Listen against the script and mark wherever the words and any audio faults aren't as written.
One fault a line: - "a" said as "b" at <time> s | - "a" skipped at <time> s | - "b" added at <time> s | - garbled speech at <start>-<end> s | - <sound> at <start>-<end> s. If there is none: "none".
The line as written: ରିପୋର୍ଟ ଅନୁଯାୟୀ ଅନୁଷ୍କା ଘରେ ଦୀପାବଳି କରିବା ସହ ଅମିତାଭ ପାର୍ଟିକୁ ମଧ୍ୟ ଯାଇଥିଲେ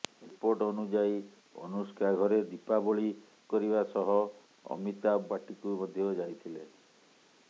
none